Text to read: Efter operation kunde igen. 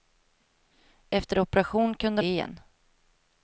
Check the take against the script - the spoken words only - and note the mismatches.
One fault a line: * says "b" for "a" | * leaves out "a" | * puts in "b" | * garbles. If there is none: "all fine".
all fine